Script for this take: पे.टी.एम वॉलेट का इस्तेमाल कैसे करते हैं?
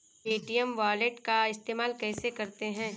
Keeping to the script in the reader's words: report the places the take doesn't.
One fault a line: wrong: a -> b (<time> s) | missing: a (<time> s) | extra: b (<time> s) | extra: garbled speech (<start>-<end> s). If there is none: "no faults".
no faults